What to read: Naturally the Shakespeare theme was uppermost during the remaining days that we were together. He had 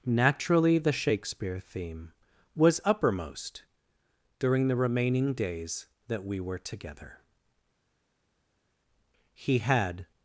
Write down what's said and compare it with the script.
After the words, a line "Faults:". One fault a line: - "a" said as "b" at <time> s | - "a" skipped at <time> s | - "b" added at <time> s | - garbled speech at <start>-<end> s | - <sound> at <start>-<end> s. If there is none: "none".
Naturally the Shakespeare theme was uppermost during the remaining days that we were together. He had
Faults:
none